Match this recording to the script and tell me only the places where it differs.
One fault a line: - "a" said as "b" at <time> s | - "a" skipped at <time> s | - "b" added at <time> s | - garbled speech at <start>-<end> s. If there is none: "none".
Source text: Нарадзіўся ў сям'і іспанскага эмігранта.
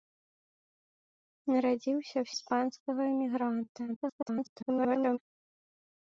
- "сям'і" skipped at 2.3 s
- garbled speech at 3.9-5.2 s